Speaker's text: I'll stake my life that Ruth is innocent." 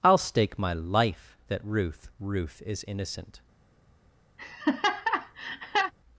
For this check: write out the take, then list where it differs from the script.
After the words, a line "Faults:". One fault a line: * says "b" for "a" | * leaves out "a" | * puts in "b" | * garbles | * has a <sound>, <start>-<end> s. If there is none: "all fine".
I'll stake my life that Ruth Ruth is innocent."
Faults:
* puts in "Ruth"
* has a laugh, 4.4-5.9 s